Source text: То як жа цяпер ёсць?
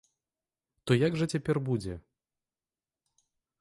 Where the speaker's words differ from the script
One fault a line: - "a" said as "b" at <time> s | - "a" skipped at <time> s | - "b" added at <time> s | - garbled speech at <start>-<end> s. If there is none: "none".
- "ёсць" said as "будзе" at 1.7 s